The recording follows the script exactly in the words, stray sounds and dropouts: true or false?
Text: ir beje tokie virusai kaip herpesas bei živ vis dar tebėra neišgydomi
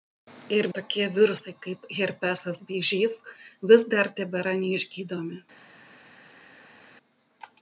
false